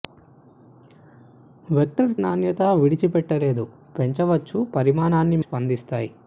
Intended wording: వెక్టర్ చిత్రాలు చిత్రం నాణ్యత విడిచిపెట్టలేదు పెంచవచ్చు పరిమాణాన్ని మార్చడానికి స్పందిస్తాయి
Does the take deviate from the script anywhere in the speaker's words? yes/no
yes